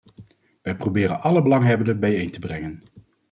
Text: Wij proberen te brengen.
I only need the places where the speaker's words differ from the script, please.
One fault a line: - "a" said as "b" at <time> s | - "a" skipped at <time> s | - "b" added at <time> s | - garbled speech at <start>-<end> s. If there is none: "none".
- "alle belanghebbenden bijeen" added at 1.2 s